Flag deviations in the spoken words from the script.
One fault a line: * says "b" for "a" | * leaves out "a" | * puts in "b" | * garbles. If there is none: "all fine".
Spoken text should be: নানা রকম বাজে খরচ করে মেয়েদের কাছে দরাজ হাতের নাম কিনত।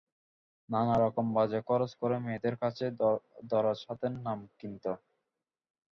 all fine